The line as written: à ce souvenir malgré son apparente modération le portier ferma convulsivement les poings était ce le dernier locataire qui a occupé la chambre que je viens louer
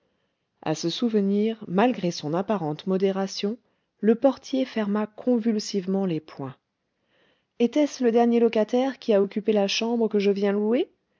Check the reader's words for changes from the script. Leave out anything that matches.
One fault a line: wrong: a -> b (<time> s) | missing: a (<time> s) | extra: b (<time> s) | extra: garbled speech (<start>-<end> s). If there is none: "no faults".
no faults